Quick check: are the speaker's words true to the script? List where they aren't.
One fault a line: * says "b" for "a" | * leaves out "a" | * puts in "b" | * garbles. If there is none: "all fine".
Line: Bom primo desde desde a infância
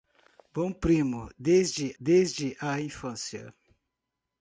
all fine